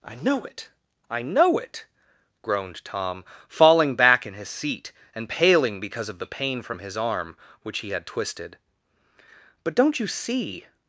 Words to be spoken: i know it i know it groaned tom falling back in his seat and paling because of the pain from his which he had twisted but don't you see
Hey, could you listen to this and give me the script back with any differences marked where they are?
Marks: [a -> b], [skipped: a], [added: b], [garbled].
i know it i know it groaned tom falling back in his seat and paling because of the pain from his [added: arm] which he had twisted but don't you see